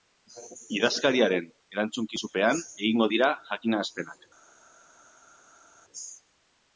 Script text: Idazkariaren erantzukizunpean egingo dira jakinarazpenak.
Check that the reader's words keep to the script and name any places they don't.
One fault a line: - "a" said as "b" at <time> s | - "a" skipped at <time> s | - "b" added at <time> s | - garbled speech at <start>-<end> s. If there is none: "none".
none